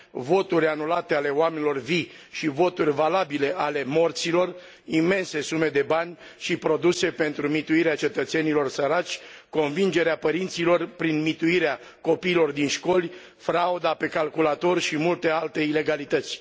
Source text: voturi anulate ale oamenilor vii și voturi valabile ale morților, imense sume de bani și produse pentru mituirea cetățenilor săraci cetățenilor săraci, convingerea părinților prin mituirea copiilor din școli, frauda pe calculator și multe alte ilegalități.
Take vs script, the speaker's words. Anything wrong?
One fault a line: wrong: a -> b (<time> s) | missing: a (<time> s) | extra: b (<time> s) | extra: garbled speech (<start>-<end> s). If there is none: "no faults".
missing: cetățenilor săraci (9.2 s)